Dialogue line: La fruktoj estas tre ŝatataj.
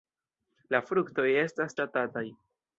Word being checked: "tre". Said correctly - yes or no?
no